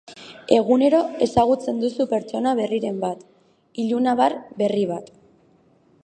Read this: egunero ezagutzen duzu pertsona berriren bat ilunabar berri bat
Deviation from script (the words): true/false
false